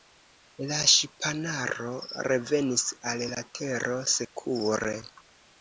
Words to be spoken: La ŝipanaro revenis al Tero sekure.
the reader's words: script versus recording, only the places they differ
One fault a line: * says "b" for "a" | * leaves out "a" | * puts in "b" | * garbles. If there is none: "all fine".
* puts in "la"